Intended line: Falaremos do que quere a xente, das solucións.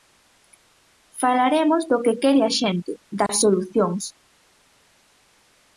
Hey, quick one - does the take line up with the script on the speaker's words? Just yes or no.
yes